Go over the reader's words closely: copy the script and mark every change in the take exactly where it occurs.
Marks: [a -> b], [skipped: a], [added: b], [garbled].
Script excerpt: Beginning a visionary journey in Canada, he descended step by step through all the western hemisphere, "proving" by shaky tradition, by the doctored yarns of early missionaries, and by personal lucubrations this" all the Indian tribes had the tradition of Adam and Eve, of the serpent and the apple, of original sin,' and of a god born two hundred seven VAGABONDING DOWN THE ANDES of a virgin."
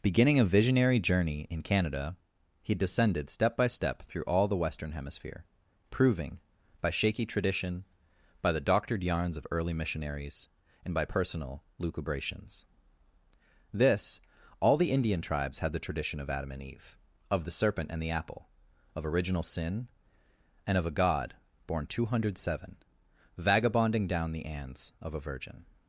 Beginning a visionary journey in Canada, he descended step by step through all the western hemisphere, "proving" by shaky tradition, by the doctored yarns of early missionaries, and by personal lucubrations this" all the Indian tribes had the tradition of Adam and Eve, of the serpent and the apple, of original sin,' and of a god born two hundred seven VAGABONDING DOWN THE ANDES of a virgin."